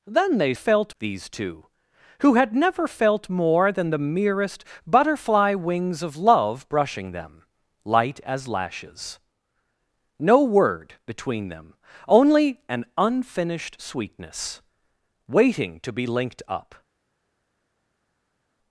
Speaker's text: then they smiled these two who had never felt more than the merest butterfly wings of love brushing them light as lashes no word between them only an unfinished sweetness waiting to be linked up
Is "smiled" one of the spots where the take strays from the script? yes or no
yes